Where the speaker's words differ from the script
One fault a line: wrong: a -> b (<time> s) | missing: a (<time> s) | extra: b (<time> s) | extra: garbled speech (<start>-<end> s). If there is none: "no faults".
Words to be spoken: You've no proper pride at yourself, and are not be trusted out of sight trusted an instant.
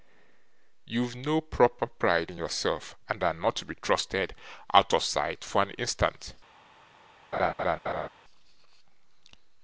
wrong: at -> in (2.3 s)
extra: to (3.5 s)
wrong: trusted -> for (5.4 s)